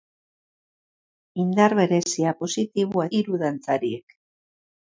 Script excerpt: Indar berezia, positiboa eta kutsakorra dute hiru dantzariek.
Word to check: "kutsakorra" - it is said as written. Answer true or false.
false